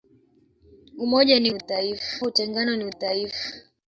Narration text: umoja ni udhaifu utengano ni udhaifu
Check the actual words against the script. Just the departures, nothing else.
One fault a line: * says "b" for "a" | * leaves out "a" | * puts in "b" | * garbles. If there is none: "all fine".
all fine